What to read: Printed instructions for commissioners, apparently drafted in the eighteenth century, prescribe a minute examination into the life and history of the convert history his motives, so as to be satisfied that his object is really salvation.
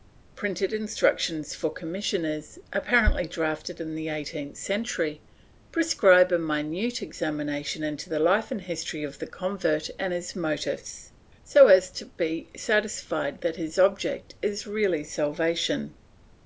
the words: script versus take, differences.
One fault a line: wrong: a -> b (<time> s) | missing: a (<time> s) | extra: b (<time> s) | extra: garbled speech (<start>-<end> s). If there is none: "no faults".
wrong: history -> and (10.0 s)